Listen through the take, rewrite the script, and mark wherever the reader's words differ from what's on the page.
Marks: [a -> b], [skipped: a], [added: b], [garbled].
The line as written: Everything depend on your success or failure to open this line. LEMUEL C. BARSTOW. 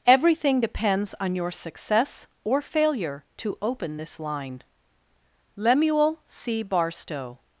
Everything [depend -> depends] on your success or failure to open this line. LEMUEL C. BARSTOW.